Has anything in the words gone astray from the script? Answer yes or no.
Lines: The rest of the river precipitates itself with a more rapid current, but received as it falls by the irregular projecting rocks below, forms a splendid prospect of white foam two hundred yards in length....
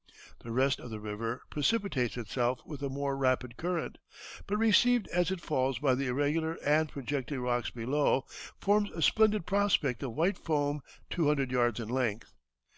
yes